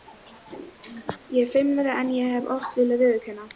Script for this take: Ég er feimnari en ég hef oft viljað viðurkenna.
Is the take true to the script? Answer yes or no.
yes